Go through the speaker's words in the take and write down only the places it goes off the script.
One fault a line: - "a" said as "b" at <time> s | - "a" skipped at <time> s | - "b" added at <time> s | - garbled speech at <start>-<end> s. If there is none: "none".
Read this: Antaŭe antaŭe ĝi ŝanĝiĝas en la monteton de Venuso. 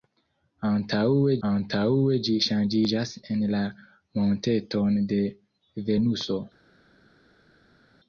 none